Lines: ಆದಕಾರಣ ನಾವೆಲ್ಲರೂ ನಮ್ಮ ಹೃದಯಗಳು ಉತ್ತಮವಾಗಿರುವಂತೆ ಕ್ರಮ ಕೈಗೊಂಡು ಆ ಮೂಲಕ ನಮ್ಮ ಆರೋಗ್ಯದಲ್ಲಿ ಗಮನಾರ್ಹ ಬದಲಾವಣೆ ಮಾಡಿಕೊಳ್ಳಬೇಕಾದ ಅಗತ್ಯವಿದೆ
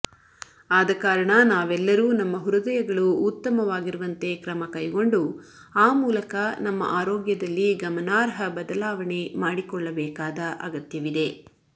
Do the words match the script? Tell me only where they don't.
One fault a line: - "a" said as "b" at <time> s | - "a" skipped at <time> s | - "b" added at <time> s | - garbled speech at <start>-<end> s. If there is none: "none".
none